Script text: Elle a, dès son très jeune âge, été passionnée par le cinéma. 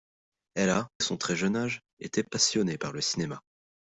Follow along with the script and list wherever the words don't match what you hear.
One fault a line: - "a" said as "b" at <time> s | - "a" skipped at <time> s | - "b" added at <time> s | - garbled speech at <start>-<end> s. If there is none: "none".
- "dès" skipped at 0.9 s